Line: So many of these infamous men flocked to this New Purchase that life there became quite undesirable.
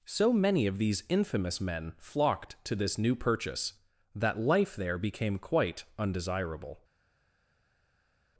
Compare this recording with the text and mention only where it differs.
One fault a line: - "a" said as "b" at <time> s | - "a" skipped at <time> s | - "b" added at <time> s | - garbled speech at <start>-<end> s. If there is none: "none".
none